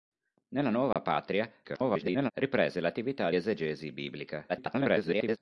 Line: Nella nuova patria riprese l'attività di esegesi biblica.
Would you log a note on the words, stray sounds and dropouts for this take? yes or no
yes